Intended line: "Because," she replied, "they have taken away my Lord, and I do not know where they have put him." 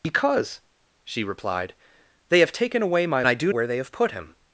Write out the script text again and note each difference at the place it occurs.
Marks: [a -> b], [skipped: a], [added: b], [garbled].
"Because," she replied, "they have taken away my [skipped: Lord, and] I do [skipped: not know] where they have put him."